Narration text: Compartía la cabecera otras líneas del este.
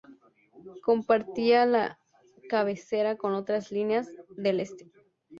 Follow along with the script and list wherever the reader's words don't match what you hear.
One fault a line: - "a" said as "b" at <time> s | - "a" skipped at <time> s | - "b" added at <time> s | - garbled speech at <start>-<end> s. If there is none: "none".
- "con" added at 3.2 s